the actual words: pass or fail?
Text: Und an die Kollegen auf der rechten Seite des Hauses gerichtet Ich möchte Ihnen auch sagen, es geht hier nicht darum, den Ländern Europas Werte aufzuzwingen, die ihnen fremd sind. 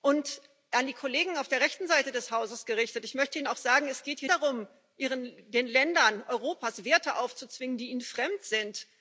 fail